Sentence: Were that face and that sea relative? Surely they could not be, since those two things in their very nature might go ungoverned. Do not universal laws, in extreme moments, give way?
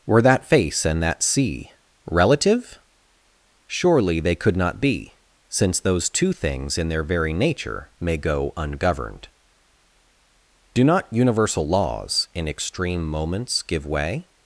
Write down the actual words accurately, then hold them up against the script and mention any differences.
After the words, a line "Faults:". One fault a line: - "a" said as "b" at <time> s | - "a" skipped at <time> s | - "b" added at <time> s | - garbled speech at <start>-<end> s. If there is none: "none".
Were that face and that sea relative? Surely they could not be, since those two things in their very nature may go ungoverned. Do not universal laws, in extreme moments, give way?
Faults:
- "might" said as "may" at 8.0 s